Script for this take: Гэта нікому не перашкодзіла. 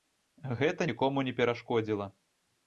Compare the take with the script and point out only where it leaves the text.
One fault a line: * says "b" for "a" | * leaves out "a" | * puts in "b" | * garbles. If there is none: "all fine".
all fine